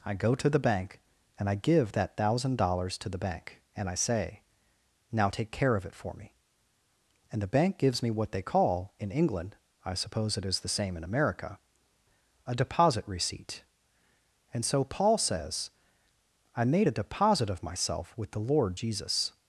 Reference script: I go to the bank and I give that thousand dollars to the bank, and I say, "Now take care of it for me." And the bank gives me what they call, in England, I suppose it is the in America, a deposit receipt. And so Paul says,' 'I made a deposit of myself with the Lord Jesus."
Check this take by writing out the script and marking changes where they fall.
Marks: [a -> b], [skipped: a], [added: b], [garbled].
I go to the bank and I give that thousand dollars to the bank, and I say, "Now take care of it for me." And the bank gives me what they call, in England, I suppose it is the [added: same] in America, a deposit receipt. And so Paul says,' 'I made a deposit of myself with the Lord Jesus."